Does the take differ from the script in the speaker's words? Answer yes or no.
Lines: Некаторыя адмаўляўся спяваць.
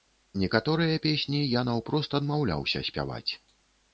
yes